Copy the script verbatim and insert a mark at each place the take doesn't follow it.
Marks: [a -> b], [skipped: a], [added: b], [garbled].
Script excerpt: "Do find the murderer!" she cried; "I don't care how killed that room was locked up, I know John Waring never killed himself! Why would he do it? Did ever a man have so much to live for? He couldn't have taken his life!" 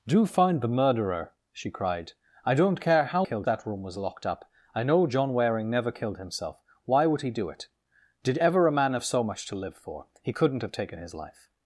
"Do find the murderer!" she cried; "I don't care how killed that room was locked up, I know John Waring never killed himself! Why would he do it? Did ever a man have so much to live for? He couldn't have taken his life!"